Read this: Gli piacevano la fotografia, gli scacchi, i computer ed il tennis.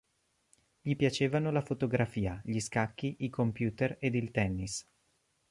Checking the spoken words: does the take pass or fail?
pass